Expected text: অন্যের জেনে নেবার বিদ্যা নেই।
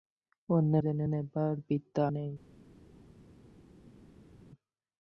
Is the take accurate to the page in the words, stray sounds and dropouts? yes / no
yes